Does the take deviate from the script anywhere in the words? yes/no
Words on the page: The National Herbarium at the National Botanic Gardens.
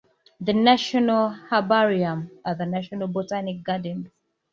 no